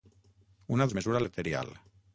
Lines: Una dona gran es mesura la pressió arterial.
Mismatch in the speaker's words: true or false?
true